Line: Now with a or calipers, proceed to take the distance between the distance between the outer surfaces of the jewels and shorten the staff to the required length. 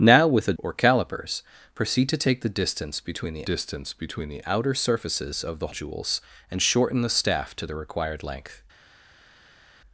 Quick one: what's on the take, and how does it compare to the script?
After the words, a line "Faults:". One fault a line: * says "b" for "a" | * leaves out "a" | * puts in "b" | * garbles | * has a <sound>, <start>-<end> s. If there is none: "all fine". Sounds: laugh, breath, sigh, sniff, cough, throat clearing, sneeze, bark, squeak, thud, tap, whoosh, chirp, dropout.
Now with a or calipers, proceed to take the distance between the distance between the outer surfaces of the jewels and shorten the staff to the required length.
Faults:
all fine